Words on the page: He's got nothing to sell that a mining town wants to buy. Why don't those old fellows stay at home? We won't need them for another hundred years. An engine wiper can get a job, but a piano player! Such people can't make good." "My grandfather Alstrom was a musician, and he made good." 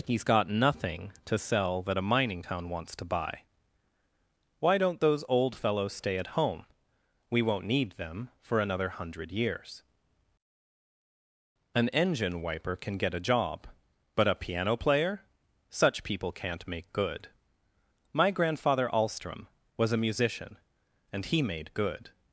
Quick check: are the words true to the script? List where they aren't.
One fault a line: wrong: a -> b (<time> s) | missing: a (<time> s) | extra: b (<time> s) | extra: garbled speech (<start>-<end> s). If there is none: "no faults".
no faults